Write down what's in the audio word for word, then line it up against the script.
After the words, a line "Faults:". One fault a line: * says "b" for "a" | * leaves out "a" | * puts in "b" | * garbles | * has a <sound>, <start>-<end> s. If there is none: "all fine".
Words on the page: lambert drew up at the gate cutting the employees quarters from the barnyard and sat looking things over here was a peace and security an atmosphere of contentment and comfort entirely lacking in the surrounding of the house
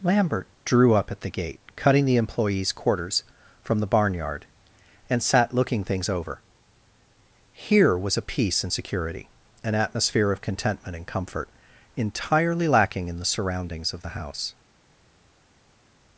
lambert drew up at the gate cutting the employees quarters from the barnyard and sat looking things over here was a peace and security an atmosphere of contentment and comfort entirely lacking in the surroundings of the house
Faults:
* says "surroundings" for "surrounding"